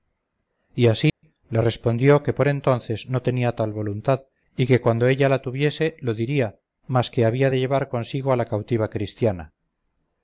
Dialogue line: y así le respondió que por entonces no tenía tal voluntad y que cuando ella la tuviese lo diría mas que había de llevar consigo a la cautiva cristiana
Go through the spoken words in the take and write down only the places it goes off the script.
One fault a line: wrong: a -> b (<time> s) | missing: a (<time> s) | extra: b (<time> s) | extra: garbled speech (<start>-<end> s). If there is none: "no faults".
no faults